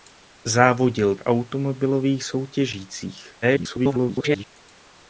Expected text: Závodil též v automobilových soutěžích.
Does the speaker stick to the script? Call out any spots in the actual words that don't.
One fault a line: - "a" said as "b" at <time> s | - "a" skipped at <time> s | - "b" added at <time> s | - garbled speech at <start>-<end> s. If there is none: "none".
- "též" skipped at 1.1 s
- garbled speech at 3.4-4.5 s